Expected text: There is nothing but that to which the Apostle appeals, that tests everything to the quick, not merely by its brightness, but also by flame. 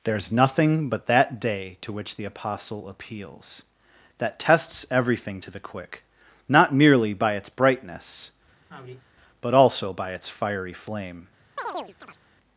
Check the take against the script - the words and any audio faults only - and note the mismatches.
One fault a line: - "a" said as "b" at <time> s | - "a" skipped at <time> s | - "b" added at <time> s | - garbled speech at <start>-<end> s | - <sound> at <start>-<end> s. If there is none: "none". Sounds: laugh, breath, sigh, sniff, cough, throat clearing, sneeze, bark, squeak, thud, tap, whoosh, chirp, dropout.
- "day" added at 1.4 s
- sigh at 8.7-9.0 s
- "its fiery" added at 10.1 s
- chirp at 11.6-12.2 s